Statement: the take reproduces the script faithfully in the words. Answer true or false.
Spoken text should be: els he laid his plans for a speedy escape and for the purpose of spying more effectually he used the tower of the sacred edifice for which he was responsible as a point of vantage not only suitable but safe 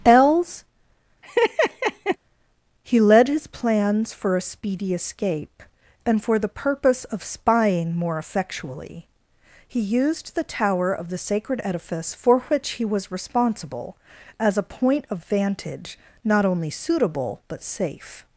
false